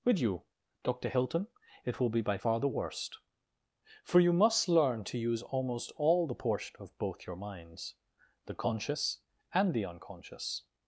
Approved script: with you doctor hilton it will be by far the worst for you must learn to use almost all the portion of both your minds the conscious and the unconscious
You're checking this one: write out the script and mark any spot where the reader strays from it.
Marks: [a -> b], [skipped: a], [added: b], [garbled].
with you doctor hilton it will be by far the worst for you must learn to use almost all the portion of both your minds the conscious and the unconscious